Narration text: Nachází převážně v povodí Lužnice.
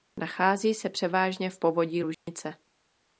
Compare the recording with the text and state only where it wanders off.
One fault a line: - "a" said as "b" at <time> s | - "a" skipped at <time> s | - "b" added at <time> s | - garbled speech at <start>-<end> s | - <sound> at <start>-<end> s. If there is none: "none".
- "se" added at 0.7 s
- dropout at 2.1-2.3 s